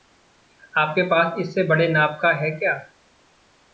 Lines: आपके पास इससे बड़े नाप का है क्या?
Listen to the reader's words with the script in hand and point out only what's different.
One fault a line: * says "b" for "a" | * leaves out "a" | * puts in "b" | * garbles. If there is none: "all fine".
all fine